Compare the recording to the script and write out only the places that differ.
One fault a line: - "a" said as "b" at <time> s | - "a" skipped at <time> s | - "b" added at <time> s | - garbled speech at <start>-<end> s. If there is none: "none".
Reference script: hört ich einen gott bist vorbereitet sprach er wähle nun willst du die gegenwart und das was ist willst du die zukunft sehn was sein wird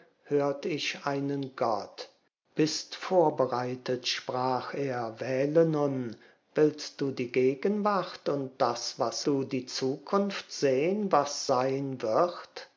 - "ist willst" skipped at 9.2 s